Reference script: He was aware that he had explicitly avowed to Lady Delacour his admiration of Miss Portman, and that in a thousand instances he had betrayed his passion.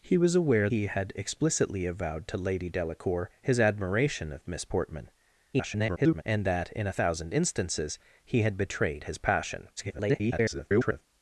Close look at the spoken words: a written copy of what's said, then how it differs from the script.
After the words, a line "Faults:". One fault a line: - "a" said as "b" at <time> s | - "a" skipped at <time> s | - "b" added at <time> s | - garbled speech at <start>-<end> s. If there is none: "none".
He was aware he had explicitly avowed to Lady Delacour his admiration of Miss Portman, [garbled] and that in a thousand instances he had betrayed his passion. [garbled]
Faults:
- "that" skipped at 0.7 s
- garbled speech at 5.5-6.2 s
- garbled speech at 9.8-11.1 s